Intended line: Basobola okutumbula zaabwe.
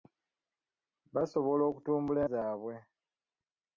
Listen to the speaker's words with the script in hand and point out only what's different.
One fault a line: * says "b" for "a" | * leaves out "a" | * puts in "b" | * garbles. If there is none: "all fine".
all fine